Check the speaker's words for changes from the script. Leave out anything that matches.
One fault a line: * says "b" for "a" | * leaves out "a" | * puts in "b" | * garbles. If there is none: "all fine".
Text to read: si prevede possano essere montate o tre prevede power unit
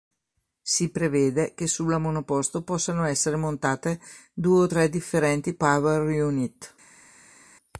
* puts in "che sulla monoposto"
* puts in "due"
* says "differenti" for "prevede"